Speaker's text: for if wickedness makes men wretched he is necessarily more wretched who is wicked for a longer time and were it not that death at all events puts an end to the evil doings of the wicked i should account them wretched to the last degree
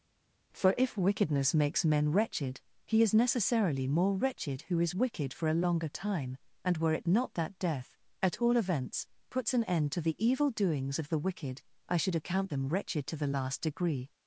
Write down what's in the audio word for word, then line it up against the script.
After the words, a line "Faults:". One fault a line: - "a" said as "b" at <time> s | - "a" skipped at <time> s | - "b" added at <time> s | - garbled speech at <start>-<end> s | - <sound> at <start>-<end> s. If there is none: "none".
for if wickedness makes men wretched he is necessarily more wretched who is wicked for a longer time and were it not that death at all events puts an end to the evil doings of the wicked i should account them wretched to the last degree
Faults:
none